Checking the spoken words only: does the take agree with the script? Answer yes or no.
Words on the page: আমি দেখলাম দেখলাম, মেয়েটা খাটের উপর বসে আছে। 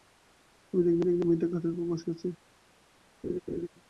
yes